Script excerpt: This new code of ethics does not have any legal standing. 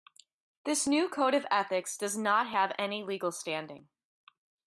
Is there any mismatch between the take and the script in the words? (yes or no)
no